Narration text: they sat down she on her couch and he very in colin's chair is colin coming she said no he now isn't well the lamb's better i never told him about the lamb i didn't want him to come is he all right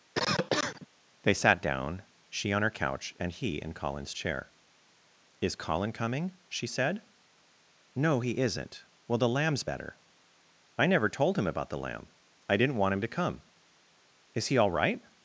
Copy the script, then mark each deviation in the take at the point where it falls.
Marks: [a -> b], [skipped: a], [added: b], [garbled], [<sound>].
[cough] they sat down she on her couch and he [skipped: very] in colin's chair is colin coming she said no he [skipped: now] isn't well the lamb's better i never told him about the lamb i didn't want him to come is he all right